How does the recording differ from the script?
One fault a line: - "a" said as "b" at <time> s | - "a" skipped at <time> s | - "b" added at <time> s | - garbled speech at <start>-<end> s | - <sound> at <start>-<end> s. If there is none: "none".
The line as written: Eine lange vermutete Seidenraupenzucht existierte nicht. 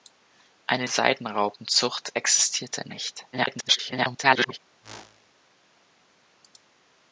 - "lange vermutete" skipped at 0.9 s
- garbled speech at 3.3-4.6 s
- whoosh at 4.8-5.3 s